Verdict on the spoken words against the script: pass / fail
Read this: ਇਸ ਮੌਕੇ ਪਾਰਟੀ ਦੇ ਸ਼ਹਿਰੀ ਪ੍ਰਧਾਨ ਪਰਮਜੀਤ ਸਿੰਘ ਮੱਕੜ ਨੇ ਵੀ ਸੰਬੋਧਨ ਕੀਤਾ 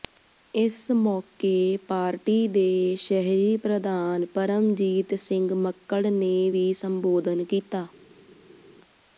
pass